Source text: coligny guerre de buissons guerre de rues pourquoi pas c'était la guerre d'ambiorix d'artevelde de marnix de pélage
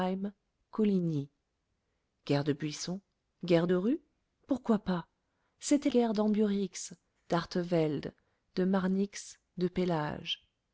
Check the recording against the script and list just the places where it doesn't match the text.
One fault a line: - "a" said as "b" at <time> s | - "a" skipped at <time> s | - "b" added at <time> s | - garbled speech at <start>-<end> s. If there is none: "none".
- "la" skipped at 5.9 s